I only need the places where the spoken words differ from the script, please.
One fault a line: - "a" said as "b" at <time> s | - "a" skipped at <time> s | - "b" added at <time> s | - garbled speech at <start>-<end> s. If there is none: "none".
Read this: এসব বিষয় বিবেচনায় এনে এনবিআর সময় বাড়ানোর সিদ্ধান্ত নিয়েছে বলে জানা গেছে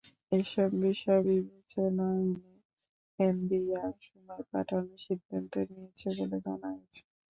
none